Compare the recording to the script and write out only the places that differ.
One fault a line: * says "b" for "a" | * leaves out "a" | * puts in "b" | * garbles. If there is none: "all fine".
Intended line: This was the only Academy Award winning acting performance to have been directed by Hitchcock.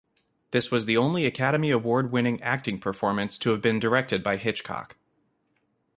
all fine